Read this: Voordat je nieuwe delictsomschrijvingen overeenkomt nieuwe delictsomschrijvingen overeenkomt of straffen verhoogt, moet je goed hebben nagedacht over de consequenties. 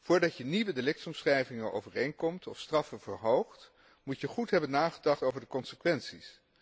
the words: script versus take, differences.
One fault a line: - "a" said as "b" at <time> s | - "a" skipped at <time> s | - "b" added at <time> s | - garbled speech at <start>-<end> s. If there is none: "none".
- "nieuwe delictsomschrijvingen overeenkomt" skipped at 2.5 s